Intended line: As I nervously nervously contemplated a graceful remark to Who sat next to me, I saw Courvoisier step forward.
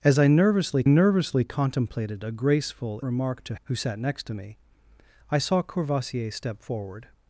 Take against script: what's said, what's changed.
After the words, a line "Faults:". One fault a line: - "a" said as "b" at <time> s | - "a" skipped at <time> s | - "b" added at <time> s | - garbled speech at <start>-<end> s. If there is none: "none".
As I nervously nervously contemplated a graceful remark to Who sat next to me, I saw Courvoisier step forward.
Faults:
none